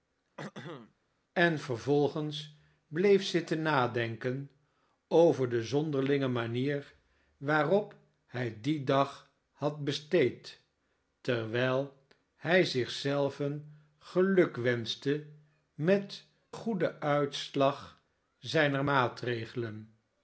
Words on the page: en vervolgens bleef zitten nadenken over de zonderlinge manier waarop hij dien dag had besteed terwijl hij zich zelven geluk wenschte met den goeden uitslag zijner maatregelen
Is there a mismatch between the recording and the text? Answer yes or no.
yes